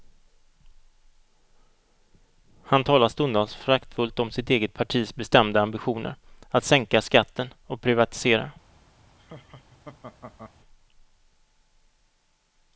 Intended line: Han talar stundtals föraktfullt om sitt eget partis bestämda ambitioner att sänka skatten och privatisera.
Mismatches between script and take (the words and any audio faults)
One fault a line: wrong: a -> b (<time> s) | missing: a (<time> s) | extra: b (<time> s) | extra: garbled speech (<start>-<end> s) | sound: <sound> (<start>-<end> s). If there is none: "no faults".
sound: laugh (9.2-10.5 s)